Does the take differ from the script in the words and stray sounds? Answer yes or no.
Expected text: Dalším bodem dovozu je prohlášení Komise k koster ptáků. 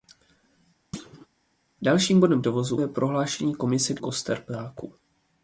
yes